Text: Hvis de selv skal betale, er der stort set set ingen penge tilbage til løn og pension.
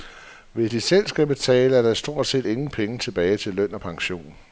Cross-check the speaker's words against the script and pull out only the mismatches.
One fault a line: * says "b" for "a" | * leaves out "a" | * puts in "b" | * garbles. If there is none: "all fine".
* leaves out "set"